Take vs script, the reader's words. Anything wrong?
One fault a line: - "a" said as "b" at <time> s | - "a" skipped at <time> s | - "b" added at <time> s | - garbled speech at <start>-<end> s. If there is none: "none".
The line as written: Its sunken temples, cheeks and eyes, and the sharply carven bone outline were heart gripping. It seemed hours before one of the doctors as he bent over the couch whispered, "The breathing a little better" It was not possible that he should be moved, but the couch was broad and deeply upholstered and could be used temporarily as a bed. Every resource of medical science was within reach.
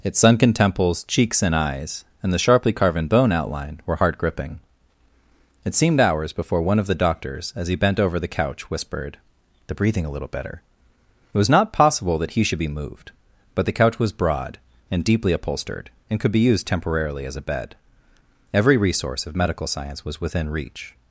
none